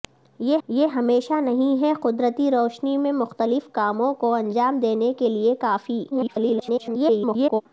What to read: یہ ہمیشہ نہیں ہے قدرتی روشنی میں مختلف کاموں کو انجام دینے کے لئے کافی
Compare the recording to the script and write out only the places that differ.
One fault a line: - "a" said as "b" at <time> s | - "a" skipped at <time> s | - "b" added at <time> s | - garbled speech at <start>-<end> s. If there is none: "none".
- "یہ" added at 0.7 s
- garbled speech at 6.1-7.6 s